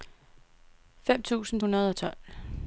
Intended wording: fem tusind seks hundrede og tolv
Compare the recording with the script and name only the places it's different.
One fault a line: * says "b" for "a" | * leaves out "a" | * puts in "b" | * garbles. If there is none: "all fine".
* leaves out "seks"